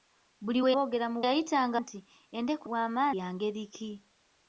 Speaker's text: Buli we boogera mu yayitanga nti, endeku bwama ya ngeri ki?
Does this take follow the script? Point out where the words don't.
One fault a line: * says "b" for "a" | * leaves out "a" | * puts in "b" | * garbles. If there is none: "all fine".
all fine